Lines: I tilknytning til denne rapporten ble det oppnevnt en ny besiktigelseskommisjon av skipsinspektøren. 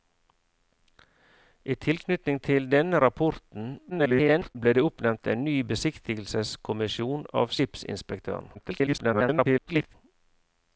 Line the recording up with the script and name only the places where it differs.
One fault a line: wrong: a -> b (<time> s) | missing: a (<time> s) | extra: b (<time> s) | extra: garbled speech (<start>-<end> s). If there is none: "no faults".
extra: garbled speech (3.9-4.6 s)
extra: garbled speech (8.5-9.9 s)